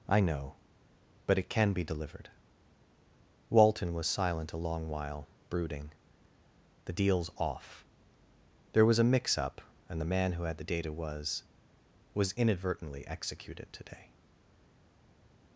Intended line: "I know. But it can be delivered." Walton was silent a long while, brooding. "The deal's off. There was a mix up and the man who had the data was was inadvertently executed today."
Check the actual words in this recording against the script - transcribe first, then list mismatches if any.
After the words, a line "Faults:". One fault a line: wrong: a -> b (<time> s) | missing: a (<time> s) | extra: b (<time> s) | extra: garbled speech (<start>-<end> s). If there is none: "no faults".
"I know. But it can be delivered." Walton was silent a long while, brooding. "The deal's off. There was a mix up and the man who had the data was was inadvertently executed today."
Faults:
no faults